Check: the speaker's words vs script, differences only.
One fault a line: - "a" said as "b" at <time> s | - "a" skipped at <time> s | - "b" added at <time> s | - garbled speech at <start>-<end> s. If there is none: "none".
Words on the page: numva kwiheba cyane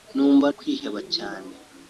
none